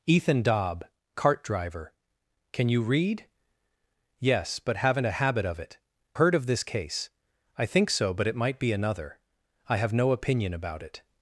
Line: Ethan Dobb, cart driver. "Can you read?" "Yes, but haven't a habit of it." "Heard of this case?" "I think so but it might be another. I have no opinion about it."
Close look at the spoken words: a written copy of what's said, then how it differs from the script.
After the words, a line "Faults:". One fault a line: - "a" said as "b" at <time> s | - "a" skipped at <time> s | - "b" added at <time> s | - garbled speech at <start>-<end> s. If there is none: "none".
Ethan Dobb, cart driver. "Can you read?" "Yes, but haven't a habit of it." "Heard of this case?" "I think so but it might be another. I have no opinion about it."
Faults:
none